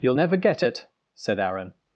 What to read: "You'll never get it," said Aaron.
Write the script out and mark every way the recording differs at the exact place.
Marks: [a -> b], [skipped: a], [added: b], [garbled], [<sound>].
"You'll never get it," said Aaron.